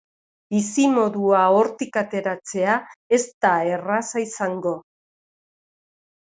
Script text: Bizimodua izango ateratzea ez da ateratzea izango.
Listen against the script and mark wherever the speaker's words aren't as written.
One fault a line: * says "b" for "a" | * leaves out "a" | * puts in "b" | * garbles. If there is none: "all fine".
* says "hortik" for "izango"
* says "erraza" for "ateratzea"